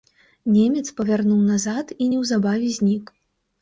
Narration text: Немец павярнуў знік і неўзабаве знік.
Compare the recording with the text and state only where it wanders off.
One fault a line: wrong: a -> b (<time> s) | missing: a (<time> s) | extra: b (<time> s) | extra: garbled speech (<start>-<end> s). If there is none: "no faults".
wrong: знік -> назад (1.5 s)